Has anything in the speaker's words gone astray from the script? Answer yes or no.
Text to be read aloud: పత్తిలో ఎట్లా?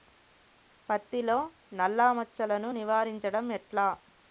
yes